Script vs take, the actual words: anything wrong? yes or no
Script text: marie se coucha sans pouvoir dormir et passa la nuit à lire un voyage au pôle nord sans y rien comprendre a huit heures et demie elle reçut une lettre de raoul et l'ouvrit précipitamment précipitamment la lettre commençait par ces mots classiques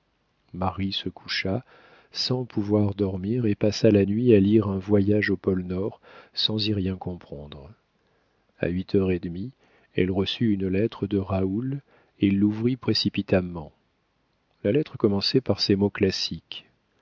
yes